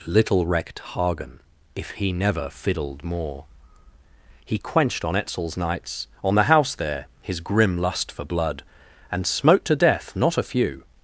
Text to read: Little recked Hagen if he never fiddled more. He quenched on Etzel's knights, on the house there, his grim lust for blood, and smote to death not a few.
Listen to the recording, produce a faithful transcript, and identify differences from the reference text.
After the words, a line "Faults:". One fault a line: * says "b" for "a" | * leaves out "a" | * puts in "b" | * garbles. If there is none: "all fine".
Little recked Hagen if he never fiddled more. He quenched on Etzel's knights, on the house there, his grim lust for blood, and smote to death not a few.
Faults:
all fine